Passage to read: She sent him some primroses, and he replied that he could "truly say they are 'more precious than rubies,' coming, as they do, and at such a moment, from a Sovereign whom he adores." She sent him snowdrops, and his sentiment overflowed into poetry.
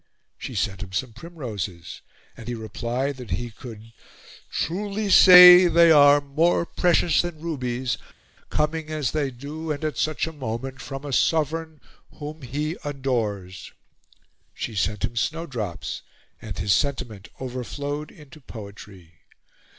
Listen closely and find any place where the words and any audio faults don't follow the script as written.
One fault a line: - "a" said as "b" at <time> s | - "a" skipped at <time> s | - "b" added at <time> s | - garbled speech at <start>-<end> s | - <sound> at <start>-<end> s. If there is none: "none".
none